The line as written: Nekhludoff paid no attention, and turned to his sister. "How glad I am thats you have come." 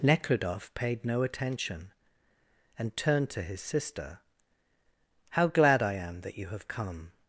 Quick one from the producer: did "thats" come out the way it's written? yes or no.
no